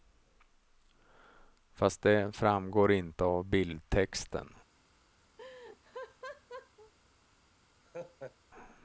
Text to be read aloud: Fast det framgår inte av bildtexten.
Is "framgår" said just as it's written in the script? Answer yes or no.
yes